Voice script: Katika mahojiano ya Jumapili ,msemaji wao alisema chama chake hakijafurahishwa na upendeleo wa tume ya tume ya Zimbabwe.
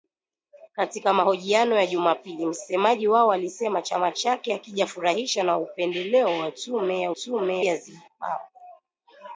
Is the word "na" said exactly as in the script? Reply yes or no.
yes